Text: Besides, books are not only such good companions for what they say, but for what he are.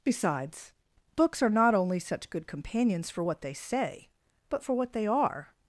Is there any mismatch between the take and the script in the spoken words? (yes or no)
yes